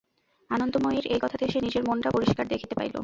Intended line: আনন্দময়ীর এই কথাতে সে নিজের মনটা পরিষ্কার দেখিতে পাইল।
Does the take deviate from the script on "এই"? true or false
false